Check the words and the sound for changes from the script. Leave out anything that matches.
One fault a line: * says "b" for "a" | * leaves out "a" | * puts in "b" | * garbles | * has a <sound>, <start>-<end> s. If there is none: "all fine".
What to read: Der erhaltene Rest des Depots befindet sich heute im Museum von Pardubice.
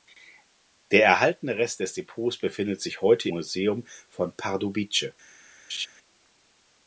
* leaves out "im"
* has a laugh, 5.7-5.9 s